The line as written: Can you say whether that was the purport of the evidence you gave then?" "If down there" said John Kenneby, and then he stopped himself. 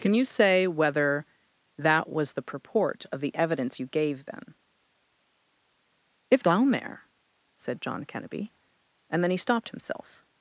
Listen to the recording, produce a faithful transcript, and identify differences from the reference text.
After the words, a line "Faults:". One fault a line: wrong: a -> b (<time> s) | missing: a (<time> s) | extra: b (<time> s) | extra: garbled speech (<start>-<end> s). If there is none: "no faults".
Can you say whether that was the purport of the evidence you gave then?" "If down there" said John Kenneby, and then he stopped himself.
Faults:
no faults